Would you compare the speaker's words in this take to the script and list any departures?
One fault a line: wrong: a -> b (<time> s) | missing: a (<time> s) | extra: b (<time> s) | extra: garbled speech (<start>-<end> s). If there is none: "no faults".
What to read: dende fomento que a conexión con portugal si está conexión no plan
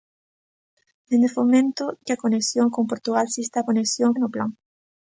no faults